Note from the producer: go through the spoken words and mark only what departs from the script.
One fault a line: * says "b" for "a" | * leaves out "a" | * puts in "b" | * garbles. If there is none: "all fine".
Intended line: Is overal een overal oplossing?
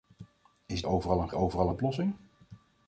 all fine